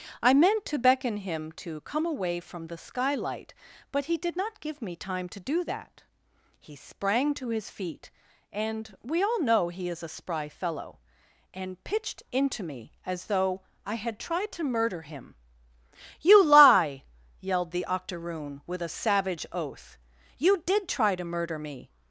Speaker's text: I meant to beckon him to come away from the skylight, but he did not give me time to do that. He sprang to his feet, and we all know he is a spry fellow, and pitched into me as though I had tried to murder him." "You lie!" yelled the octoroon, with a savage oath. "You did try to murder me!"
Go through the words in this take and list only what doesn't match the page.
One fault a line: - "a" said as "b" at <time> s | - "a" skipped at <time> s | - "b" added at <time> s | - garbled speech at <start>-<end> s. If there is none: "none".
none